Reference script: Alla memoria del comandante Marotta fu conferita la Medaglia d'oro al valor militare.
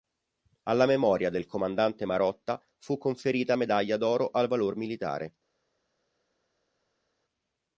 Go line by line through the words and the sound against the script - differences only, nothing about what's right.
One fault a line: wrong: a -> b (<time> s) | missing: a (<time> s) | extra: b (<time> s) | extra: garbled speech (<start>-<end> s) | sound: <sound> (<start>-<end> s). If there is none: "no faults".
missing: la (3.5 s)